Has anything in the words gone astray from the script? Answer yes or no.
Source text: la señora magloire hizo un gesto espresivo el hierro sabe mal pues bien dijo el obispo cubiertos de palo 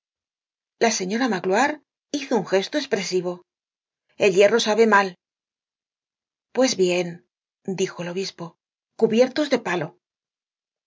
no